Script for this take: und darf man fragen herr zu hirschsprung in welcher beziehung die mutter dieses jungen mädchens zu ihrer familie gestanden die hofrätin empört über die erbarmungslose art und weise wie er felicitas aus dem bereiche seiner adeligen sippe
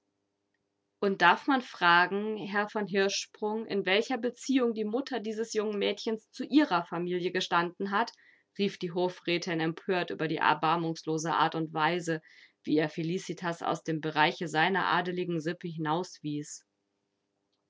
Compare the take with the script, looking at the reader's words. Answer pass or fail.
fail